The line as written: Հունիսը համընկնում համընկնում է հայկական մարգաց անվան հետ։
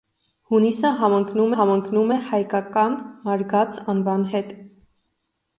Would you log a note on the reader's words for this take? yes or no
no